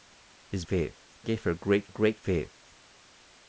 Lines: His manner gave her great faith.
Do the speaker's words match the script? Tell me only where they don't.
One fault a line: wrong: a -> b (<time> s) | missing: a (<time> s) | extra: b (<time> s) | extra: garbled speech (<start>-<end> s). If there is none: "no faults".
wrong: manner -> faith (0.6 s)
extra: great (1.9 s)